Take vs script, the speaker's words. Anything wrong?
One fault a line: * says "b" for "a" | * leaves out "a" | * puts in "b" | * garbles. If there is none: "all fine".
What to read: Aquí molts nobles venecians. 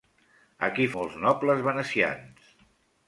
all fine